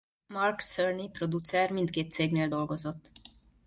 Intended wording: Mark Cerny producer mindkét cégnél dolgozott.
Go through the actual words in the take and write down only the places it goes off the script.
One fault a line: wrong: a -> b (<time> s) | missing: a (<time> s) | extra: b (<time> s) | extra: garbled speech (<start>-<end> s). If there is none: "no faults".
no faults